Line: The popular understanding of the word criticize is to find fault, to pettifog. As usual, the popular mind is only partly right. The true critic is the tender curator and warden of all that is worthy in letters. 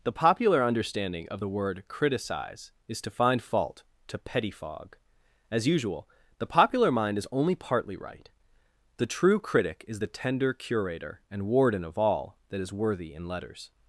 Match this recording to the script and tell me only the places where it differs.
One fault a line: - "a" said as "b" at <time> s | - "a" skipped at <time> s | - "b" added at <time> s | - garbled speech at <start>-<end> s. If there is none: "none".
none